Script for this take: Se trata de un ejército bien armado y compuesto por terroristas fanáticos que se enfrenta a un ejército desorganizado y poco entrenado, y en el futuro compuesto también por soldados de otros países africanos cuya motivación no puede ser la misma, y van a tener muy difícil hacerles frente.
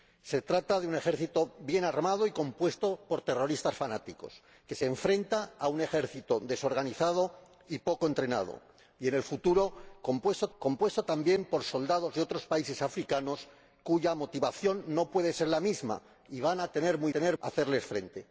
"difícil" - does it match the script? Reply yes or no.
no